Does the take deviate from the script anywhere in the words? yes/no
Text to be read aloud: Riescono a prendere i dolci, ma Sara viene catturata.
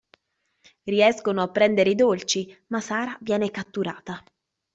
no